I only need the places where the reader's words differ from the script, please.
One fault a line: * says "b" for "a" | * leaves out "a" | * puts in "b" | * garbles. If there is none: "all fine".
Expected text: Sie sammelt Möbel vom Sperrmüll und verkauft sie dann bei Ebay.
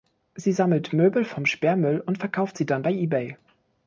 all fine